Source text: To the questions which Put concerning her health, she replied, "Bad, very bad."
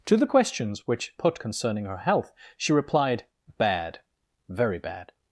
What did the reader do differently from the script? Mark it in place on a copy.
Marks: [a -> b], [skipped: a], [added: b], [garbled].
To the questions which Put concerning her health, she replied, "Bad, very bad."